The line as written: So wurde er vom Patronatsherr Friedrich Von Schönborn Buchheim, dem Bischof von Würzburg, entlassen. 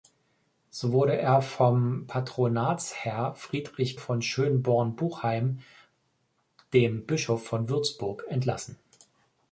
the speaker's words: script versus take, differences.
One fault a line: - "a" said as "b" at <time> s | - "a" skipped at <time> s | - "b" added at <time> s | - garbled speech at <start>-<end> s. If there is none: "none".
none